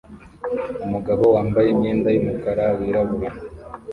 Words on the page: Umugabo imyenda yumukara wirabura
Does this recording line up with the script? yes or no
no